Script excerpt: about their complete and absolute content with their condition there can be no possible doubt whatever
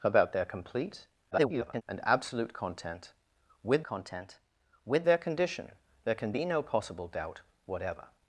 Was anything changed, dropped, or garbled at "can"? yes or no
no